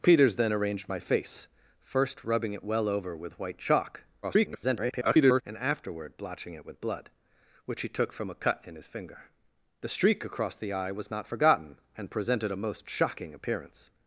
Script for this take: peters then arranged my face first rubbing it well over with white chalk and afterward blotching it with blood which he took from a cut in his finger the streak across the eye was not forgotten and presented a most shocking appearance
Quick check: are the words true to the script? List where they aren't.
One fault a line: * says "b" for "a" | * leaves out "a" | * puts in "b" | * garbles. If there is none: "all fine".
* garbles